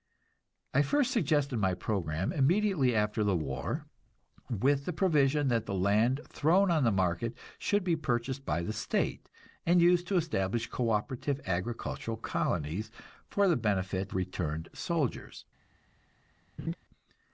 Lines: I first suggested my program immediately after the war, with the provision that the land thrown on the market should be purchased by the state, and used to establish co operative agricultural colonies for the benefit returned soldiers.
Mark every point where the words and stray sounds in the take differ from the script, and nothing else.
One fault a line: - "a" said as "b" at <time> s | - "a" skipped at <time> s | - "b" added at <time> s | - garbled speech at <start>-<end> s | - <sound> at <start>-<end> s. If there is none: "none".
- laugh at 16.6-16.8 s